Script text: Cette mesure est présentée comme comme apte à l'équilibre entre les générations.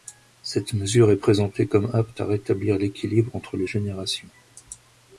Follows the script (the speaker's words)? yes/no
no